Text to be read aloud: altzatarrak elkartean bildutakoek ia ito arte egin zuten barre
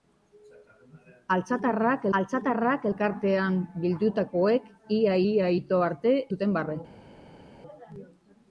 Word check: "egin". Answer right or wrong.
wrong